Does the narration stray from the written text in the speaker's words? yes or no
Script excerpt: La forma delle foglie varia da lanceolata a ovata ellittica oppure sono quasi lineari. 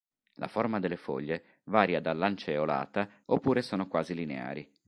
yes